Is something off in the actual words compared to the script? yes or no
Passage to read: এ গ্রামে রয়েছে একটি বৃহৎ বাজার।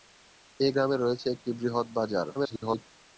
yes